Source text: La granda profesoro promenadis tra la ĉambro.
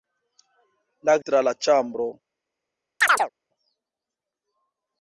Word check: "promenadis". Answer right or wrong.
wrong